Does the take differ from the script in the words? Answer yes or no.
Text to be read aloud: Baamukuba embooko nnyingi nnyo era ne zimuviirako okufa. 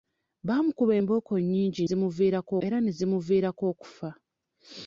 yes